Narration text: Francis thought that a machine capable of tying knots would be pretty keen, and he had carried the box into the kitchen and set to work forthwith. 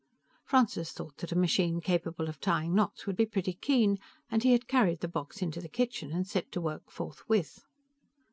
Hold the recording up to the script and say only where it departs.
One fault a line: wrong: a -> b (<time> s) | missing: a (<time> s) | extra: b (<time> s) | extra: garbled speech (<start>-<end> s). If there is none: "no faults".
no faults